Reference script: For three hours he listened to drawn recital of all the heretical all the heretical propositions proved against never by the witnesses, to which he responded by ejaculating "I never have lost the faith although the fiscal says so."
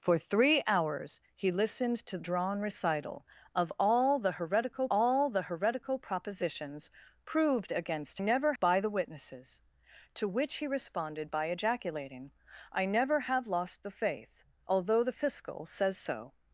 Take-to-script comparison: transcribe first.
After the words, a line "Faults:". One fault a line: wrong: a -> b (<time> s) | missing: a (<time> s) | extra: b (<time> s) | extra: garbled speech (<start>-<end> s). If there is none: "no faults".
For three hours he listened to drawn recital of all the heretical all the heretical propositions proved against never by the witnesses, to which he responded by ejaculating "I never have lost the faith although the fiscal says so."
Faults:
no faults